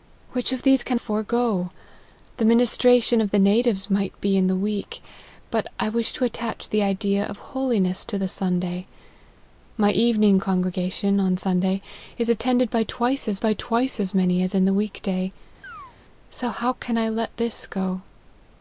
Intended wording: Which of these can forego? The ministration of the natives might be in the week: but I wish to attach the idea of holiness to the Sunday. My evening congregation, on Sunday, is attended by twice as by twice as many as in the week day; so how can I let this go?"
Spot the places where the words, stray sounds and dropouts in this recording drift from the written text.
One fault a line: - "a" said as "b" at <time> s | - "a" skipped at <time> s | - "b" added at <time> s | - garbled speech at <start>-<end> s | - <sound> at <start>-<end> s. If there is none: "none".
- chirp at 15.6-16.0 s